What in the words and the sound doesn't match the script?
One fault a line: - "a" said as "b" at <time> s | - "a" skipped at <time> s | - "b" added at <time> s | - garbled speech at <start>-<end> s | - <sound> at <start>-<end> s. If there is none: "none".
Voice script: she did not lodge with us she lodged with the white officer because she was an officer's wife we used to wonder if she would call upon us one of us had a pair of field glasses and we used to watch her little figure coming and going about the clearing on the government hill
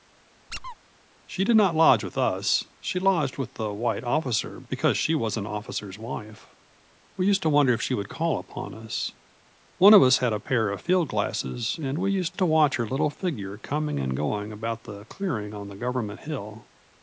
- squeak at 0.5-0.8 s